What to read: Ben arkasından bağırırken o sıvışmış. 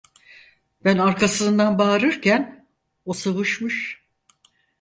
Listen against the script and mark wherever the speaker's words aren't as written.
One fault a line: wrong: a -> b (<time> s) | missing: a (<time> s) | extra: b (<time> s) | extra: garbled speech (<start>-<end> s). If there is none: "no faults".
no faults